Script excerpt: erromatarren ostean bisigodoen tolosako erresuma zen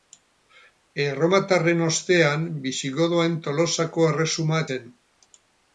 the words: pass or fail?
pass